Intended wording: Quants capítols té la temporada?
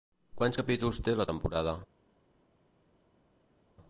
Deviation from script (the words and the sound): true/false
false